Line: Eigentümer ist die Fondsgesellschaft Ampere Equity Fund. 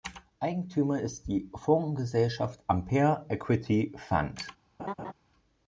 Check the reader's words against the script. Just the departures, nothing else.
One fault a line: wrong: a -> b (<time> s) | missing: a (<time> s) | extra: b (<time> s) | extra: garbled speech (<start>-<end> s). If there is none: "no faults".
no faults